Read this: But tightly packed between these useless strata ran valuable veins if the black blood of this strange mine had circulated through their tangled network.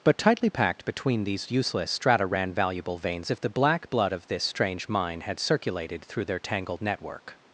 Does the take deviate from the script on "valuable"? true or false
false